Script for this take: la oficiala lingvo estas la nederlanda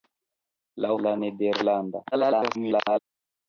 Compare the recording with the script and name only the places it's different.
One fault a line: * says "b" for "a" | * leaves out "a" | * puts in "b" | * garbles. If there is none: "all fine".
* leaves out "oficiala lingvo estas"
* garbles